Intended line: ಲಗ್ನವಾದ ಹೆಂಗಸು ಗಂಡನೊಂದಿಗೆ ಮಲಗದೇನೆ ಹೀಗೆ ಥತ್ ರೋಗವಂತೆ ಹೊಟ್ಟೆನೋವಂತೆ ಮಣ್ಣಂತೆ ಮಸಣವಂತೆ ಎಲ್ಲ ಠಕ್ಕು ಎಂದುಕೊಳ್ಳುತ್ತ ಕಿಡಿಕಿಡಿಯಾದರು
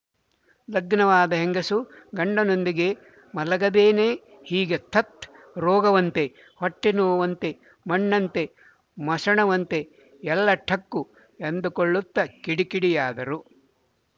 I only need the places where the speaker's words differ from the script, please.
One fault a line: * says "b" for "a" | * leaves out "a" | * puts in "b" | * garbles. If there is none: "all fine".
all fine